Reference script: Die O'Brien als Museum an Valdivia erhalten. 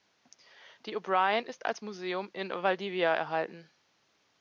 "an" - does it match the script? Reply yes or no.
no